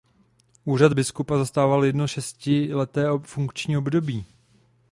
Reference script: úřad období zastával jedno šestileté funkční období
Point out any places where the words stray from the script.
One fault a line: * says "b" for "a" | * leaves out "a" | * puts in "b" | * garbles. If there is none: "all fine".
* says "biskupa" for "období"